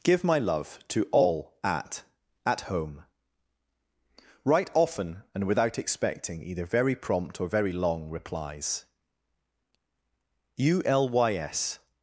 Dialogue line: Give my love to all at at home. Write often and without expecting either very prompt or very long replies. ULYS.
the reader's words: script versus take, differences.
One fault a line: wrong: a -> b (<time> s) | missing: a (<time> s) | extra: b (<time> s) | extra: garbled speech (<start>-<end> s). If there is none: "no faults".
no faults